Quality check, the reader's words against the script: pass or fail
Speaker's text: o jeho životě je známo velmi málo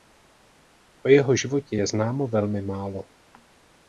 pass